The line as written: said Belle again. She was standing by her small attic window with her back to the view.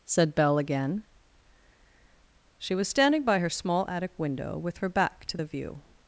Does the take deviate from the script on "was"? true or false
false